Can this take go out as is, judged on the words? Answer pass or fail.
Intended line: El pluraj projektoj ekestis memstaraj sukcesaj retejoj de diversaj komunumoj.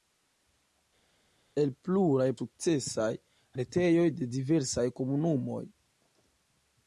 fail